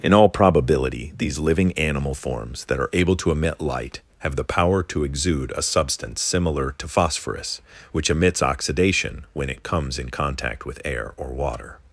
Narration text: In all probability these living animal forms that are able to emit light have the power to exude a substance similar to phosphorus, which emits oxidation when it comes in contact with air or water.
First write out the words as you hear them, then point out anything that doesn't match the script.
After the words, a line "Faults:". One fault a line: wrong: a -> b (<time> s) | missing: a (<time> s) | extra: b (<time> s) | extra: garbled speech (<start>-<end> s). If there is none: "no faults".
In all probability these living animal forms that are able to emit light have the power to exude a substance similar to phosphorus, which emits oxidation when it comes in contact with air or water.
Faults:
no faults